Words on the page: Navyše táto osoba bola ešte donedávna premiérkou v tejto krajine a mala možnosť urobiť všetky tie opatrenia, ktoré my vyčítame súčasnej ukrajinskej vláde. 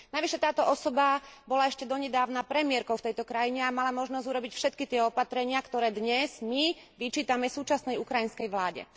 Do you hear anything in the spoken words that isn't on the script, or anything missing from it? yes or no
yes